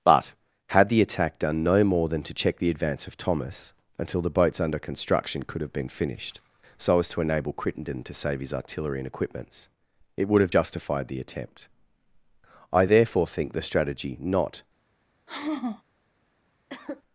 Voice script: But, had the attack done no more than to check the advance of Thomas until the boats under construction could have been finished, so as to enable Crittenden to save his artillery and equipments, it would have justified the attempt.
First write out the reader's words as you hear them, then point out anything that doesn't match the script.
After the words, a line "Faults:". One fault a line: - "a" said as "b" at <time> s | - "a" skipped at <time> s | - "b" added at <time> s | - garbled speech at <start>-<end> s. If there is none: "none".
But, had the attack done no more than to check the advance of Thomas until the boats under construction could have been finished, so as to enable Crittenden to save his artillery and equipments, it would have justified the attempt. I therefore think the strategy not
Faults:
- "I therefore think the strategy not" added at 12.7 s